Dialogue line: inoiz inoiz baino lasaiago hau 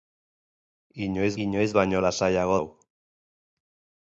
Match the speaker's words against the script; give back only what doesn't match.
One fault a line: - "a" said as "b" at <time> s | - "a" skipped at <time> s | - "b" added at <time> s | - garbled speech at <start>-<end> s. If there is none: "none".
none